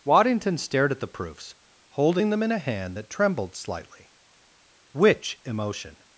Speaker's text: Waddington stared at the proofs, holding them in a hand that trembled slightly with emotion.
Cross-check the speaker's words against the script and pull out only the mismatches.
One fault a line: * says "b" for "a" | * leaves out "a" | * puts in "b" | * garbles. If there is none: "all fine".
* says "which" for "with"